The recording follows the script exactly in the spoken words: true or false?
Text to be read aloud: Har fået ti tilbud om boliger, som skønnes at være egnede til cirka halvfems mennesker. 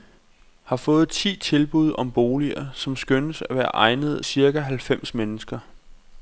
false